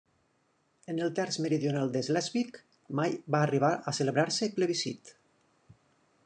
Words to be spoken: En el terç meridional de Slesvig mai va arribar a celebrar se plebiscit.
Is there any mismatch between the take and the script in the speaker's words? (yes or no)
no